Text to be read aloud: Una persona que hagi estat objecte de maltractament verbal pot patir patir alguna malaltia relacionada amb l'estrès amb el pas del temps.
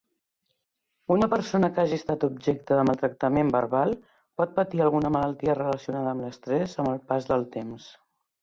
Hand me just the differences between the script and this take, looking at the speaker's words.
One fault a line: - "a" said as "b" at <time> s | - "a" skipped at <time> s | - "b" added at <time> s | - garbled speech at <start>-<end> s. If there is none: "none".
- "patir" skipped at 4.9 s